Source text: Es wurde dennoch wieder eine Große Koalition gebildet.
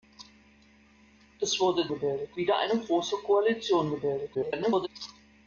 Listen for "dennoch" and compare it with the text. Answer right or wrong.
wrong